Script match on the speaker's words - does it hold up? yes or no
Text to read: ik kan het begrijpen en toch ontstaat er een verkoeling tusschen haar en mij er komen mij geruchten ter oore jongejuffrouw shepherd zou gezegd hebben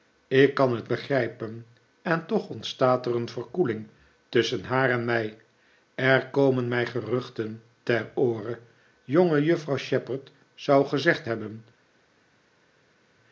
yes